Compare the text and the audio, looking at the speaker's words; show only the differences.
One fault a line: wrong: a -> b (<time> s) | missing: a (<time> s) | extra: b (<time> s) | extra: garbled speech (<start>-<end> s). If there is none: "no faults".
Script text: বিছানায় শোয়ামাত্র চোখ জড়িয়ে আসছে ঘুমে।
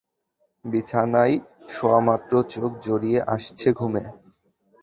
no faults